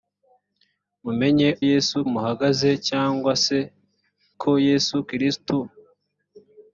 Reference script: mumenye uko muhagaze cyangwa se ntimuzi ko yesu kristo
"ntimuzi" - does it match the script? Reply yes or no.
no